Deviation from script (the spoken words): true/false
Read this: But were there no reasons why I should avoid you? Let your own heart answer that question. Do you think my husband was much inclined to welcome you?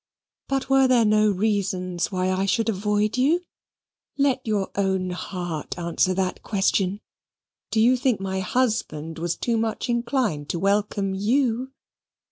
true